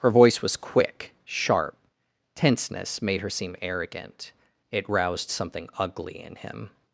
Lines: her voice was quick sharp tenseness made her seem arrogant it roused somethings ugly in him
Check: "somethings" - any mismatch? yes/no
yes